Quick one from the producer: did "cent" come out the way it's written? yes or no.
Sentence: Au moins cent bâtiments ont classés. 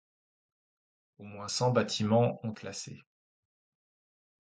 yes